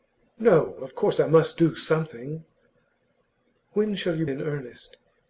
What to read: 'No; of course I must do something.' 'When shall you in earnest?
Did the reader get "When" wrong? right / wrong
right